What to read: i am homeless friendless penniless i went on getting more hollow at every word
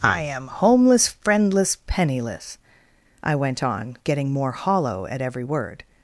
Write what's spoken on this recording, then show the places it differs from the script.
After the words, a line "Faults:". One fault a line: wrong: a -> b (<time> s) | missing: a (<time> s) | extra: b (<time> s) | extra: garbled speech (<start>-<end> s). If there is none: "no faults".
i am homeless friendless penniless i went on getting more hollow at every word
Faults:
no faults